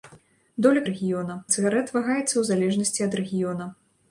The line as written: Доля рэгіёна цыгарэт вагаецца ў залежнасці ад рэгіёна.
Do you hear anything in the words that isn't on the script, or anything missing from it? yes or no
no